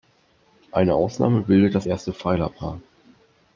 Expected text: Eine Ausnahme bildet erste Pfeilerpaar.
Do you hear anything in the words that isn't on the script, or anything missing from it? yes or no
yes